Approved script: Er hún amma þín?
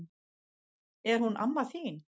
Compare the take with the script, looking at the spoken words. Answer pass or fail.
pass